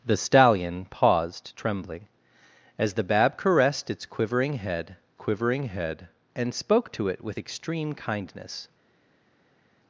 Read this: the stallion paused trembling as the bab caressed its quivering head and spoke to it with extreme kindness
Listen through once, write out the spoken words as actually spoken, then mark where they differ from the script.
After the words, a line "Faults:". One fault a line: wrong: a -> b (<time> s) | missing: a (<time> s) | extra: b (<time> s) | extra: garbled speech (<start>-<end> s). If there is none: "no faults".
the stallion paused trembling as the bab caressed its quivering head quivering head and spoke to it with extreme kindness
Faults:
extra: quivering head (5.1 s)